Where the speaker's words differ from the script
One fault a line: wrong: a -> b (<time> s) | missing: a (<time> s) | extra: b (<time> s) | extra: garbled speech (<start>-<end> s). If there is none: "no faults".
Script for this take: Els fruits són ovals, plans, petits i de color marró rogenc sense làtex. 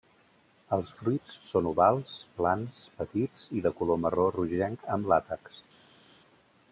wrong: sense -> amb (5.0 s)